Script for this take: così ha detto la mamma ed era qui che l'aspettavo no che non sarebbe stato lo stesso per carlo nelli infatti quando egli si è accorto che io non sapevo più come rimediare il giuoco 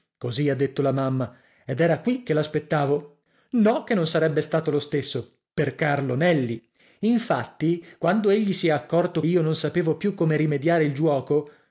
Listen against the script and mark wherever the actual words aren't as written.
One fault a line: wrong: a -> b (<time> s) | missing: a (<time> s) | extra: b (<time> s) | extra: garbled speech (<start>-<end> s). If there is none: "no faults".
missing: che (9.2 s)